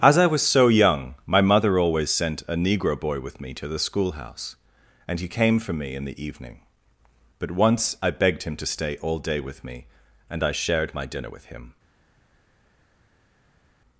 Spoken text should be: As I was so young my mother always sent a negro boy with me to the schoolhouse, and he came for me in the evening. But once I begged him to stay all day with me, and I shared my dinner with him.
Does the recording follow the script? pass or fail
pass